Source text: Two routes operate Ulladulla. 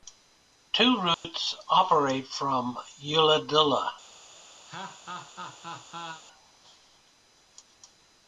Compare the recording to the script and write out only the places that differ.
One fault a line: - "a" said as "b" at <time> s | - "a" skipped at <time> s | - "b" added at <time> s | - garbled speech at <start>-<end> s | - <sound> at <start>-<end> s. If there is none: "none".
- dropout at 1.1-1.2 s
- "from" added at 2.2 s
- laugh at 4.7-6.2 s